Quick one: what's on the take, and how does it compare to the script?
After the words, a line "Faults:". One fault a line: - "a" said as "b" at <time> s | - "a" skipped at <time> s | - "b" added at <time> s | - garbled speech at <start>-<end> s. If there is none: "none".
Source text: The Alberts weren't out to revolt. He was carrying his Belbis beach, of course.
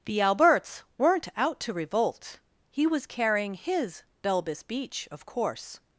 The Alberts weren't out to revolt. He was carrying his Belbis beach, of course.
Faults:
none